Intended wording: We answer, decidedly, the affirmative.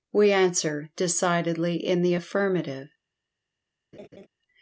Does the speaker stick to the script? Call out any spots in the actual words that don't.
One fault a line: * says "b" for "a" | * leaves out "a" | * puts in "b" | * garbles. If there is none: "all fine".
* puts in "in"